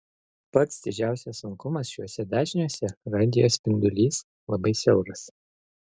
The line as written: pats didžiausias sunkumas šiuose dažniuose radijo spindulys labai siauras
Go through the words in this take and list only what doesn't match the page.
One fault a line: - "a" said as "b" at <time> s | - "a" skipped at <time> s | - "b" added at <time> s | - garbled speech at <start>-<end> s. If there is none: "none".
none